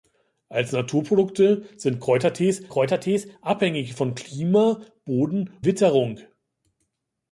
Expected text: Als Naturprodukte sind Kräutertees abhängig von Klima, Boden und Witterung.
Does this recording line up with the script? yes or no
no